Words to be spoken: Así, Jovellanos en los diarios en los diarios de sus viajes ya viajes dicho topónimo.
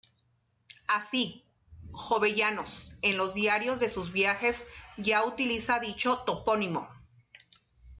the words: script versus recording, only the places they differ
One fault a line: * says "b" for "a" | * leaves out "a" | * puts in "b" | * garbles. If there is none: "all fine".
* leaves out "en los diarios"
* says "utiliza" for "viajes"